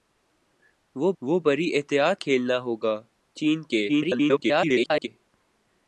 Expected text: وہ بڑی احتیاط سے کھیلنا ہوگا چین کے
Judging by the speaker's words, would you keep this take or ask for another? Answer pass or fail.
fail